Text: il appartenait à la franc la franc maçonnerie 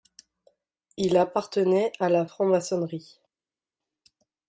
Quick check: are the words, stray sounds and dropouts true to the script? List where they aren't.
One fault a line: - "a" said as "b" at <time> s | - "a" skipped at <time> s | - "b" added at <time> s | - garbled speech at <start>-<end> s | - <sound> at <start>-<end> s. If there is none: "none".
- "la franc" skipped at 2.4 s